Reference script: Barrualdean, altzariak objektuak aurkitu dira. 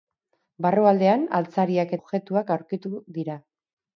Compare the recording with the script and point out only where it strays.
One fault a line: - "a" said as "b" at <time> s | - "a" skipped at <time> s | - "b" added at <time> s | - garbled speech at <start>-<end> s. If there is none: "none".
none